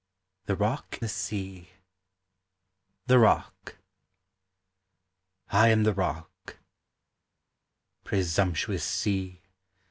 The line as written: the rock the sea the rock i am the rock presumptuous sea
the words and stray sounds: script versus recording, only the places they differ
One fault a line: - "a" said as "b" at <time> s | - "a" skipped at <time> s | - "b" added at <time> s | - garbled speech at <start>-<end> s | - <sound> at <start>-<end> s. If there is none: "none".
none